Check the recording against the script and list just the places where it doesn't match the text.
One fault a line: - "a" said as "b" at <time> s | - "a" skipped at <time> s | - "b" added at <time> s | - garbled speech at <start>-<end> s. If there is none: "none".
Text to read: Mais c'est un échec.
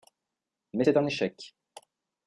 none